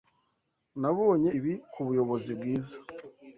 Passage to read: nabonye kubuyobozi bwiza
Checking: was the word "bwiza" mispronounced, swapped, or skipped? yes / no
no